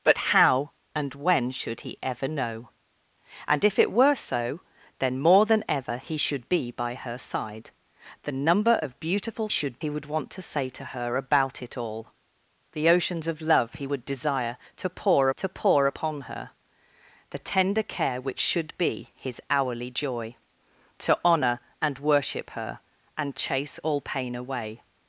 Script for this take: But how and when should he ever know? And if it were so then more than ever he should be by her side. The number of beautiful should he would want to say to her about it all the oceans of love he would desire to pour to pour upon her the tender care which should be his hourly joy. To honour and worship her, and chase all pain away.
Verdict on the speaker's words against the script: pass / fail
pass